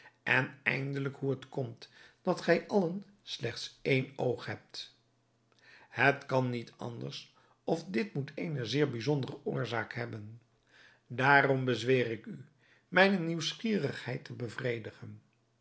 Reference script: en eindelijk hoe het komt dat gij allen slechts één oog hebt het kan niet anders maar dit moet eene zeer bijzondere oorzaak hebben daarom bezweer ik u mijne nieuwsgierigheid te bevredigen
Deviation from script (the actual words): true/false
true